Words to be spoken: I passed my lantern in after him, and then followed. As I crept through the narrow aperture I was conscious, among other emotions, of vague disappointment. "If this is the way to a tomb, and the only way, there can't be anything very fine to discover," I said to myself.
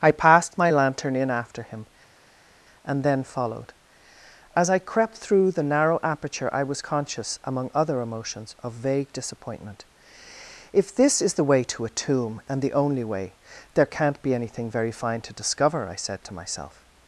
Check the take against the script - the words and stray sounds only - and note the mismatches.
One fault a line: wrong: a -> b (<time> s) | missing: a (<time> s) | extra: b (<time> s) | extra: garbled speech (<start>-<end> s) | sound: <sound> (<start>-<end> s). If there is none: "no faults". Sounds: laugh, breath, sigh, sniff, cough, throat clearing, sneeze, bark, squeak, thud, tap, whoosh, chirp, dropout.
no faults